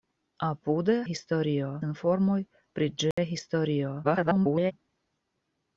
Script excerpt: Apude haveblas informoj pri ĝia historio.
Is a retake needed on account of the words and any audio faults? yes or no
yes